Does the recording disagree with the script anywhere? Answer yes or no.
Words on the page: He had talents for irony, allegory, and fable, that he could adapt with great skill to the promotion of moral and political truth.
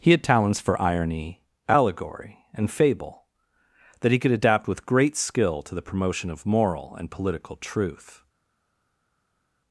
no